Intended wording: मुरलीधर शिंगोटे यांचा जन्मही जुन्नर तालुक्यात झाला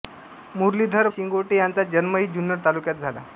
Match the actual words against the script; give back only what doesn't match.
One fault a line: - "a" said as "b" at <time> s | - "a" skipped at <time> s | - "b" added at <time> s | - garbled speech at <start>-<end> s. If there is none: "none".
none